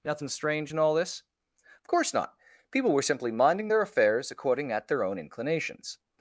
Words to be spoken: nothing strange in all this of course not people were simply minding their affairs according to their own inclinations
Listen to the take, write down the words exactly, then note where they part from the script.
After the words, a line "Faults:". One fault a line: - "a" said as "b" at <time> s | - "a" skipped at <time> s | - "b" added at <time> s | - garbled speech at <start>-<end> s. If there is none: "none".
nothing strange in all this of course not people were simply minding their affairs according at their own inclinations
Faults:
- "to" said as "at" at 4.7 s